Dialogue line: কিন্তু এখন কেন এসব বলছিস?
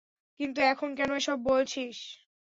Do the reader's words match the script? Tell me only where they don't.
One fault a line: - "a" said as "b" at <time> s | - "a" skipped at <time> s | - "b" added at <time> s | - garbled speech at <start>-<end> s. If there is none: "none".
none